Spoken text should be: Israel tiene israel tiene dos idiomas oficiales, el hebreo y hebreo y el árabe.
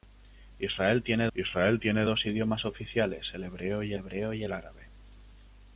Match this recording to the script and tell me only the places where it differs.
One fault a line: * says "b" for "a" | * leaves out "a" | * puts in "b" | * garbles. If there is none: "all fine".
all fine